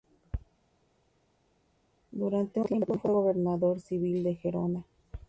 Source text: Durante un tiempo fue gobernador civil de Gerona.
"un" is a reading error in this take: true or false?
true